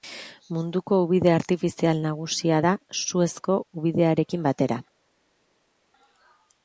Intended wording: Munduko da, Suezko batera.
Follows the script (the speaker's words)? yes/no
no